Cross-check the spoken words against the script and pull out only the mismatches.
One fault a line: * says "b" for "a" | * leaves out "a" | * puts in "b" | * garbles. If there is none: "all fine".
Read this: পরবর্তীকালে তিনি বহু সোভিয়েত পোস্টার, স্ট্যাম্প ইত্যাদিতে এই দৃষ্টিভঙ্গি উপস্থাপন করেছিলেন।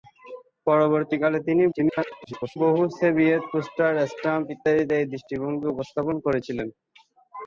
* garbles